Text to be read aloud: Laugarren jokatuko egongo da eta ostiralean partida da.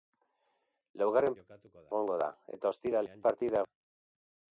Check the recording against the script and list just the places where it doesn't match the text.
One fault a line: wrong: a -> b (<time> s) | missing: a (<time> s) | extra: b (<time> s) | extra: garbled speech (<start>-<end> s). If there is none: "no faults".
no faults